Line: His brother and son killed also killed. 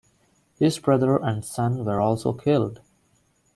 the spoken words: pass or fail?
fail